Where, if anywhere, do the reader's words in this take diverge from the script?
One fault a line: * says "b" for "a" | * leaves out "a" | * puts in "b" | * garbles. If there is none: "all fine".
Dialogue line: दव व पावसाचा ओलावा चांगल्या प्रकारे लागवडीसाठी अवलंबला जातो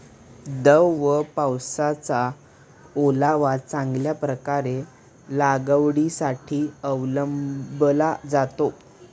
all fine